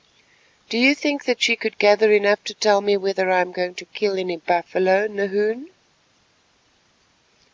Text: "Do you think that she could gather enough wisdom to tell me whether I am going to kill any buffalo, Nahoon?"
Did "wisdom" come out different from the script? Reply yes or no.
yes